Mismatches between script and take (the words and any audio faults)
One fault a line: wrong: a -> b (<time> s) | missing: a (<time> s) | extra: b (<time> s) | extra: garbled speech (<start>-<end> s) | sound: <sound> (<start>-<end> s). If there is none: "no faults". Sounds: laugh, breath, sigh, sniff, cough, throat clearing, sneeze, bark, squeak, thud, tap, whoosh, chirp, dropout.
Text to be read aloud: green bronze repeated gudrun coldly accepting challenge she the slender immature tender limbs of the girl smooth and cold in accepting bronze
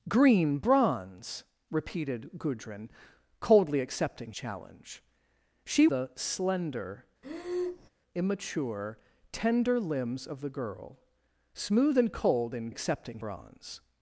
sound: breath (7.2-7.9 s)